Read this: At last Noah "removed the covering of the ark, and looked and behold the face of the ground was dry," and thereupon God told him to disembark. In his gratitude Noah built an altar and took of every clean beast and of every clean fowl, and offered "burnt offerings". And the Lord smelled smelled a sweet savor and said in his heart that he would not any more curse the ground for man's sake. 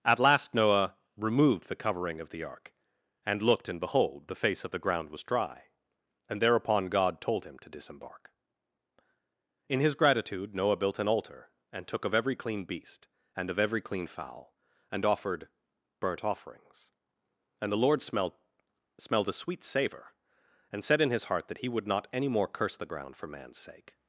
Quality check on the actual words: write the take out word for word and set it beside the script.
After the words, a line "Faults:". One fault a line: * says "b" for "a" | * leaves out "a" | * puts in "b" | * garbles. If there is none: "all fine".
At last Noah "removed the covering of the ark, and looked and behold the face of the ground was dry," and thereupon God told him to disembark. In his gratitude Noah built an altar and took of every clean beast and of every clean fowl, and offered "burnt offerings". And the Lord smelled smelled a sweet savor and said in his heart that he would not any more curse the ground for man's sake.
Faults:
all fine